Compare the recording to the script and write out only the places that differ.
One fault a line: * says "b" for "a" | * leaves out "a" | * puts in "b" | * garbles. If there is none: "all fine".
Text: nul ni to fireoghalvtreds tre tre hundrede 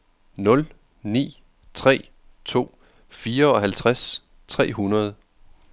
* puts in "tre"
* leaves out "tre"